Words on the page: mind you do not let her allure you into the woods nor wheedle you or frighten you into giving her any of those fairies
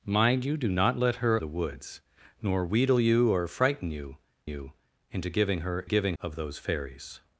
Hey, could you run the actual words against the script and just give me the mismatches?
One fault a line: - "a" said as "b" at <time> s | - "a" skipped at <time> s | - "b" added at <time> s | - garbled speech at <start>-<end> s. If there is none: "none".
- "allure you into" skipped at 1.4 s
- "you" added at 4.4 s
- "any" said as "giving" at 5.8 s